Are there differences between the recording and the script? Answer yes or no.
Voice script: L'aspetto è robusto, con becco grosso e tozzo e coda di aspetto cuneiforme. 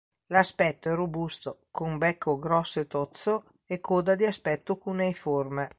no